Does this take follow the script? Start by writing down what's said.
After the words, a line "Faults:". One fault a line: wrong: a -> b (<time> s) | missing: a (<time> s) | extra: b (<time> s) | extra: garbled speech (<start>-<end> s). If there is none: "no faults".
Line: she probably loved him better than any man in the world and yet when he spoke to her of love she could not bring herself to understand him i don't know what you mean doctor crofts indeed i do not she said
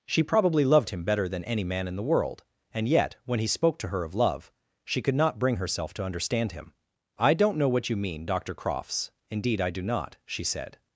she probably loved him better than any man in the world and yet when he spoke to her of love she could not bring herself to understand him i don't know what you mean doctor crofts indeed i do not she said
Faults:
no faults